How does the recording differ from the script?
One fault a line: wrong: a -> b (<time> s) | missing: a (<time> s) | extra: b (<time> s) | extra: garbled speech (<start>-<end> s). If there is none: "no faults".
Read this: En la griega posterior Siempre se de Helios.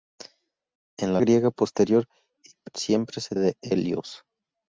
no faults